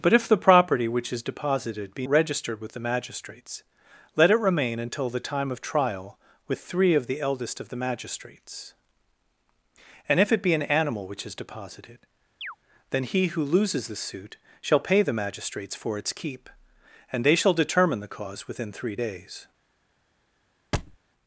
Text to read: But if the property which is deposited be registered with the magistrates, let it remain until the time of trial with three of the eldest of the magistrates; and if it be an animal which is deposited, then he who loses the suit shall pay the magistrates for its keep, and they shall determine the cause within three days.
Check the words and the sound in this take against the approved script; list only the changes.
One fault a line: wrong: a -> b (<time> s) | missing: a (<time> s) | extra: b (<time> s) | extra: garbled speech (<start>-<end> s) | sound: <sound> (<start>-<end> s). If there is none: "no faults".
sound: chirp (12.4-12.6 s)
sound: thud (20.7-21.0 s)